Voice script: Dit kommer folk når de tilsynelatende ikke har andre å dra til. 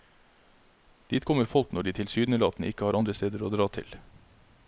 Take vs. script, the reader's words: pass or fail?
fail